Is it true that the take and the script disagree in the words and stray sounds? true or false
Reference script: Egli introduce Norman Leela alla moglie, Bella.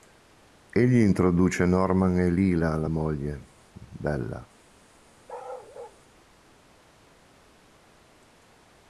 true